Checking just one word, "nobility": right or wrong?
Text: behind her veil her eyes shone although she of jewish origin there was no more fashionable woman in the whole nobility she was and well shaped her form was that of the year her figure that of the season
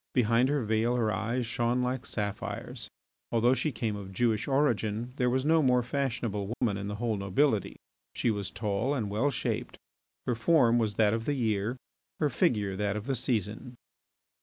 right